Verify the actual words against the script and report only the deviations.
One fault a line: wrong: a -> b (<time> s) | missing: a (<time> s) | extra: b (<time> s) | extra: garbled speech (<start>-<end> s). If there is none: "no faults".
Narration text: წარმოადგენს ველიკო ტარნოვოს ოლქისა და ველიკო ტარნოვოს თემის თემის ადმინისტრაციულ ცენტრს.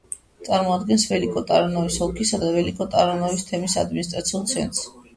missing: თემის (3.8 s)